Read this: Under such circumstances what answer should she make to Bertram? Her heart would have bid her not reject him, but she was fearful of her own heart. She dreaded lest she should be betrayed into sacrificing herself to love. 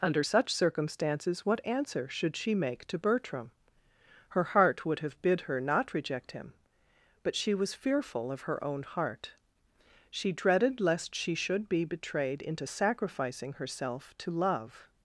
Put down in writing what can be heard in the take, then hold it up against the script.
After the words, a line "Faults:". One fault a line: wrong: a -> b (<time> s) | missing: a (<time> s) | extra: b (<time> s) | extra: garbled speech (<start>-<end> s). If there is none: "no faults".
Under such circumstances what answer should she make to Bertram? Her heart would have bid her not reject him, but she was fearful of her own heart. She dreaded lest she should be betrayed into sacrificing herself to love.
Faults:
no faults